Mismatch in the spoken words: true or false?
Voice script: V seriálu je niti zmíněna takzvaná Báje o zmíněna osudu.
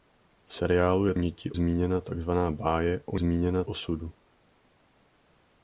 false